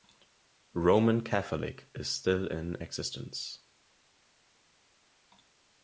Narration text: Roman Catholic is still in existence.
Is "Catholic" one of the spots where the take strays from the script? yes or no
no